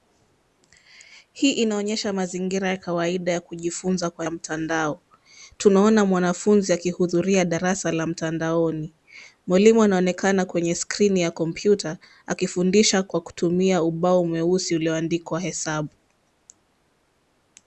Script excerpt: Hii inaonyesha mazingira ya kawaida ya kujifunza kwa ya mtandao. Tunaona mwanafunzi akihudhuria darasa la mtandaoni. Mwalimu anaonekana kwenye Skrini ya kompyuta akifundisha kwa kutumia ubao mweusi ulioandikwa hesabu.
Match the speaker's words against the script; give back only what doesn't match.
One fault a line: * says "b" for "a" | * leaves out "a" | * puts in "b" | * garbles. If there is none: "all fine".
all fine